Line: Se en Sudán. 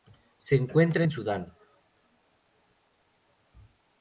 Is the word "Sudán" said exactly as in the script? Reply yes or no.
yes